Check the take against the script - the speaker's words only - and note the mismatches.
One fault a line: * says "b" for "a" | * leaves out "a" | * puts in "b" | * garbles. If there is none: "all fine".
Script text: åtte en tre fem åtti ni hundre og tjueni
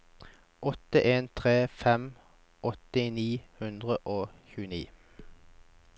all fine